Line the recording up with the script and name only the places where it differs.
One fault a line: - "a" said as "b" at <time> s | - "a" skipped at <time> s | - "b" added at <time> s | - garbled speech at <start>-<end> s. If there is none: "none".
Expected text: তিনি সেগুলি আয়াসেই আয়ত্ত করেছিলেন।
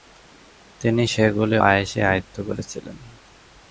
none